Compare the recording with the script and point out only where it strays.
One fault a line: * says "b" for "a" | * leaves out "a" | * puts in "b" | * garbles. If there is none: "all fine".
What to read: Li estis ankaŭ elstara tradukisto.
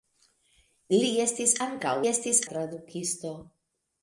* says "estis" for "elstara"